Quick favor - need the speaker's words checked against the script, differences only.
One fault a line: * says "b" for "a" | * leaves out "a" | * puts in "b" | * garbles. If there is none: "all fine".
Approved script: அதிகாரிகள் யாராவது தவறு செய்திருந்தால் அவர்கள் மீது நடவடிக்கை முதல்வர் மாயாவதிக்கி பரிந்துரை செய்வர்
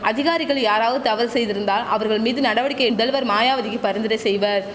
all fine